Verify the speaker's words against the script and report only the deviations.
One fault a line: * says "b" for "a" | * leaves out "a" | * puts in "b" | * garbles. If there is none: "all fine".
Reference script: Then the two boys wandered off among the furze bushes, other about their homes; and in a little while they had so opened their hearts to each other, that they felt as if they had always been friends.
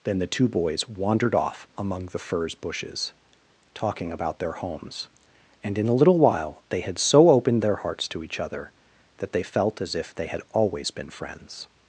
* says "talking" for "other"